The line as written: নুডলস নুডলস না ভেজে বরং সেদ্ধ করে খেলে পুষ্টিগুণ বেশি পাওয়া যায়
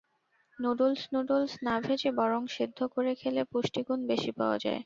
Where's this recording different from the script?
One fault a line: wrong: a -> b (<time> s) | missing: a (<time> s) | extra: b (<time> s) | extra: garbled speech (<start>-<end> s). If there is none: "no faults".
no faults